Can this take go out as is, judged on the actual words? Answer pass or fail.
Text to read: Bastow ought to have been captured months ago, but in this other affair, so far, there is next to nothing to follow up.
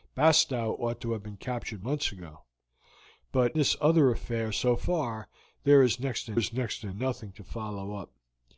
fail